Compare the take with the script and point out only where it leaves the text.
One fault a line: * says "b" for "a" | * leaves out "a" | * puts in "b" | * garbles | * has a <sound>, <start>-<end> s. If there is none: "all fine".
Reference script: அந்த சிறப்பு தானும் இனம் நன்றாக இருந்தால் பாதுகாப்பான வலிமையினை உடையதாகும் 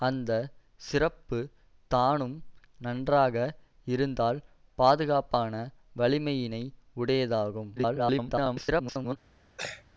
* leaves out "இனம்"
* garbles
* has a throat clearing, 9.6-9.8 s